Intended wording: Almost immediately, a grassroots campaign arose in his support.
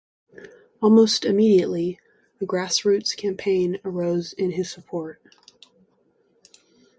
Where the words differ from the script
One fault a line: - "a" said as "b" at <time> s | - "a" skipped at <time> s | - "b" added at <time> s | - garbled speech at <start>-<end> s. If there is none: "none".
none